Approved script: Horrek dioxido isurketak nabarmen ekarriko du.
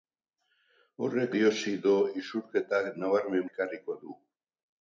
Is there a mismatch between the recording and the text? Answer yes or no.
no